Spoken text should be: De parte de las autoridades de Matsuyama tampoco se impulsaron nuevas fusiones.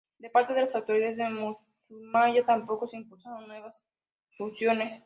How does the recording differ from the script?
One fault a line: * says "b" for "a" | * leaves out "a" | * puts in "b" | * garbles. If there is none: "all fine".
all fine